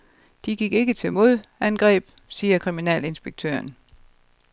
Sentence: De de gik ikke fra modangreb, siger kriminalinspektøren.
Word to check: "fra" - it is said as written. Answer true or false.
false